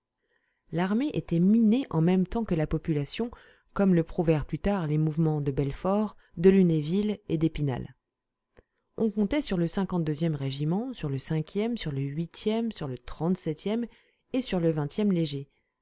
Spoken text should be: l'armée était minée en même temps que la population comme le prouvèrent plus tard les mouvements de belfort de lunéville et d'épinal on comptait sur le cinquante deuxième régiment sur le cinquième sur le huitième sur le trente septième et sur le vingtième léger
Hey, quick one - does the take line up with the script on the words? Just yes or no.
yes